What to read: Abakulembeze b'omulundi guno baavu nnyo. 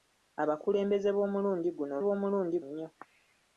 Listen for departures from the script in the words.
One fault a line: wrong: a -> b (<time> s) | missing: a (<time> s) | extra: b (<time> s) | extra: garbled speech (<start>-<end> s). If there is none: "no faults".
wrong: baavu -> b'omulundi (2.0 s)